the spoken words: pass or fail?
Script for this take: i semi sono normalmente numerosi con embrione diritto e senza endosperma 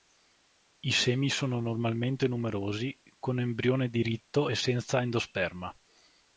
pass